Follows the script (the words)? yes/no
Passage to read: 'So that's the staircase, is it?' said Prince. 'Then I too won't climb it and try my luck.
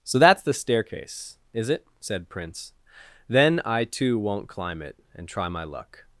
yes